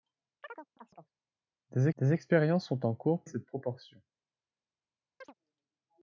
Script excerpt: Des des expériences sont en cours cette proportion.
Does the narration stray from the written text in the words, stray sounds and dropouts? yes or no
yes